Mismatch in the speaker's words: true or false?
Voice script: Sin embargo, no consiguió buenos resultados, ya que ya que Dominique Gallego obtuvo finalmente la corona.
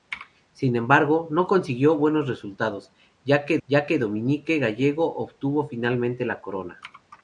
false